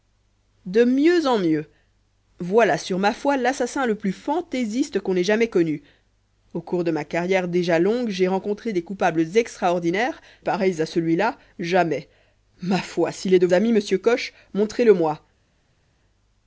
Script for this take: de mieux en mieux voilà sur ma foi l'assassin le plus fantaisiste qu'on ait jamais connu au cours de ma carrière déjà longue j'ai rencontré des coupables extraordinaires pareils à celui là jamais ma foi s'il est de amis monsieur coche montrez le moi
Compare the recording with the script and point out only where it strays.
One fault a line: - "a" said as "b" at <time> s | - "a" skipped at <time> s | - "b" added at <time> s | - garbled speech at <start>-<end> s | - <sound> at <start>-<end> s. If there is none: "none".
none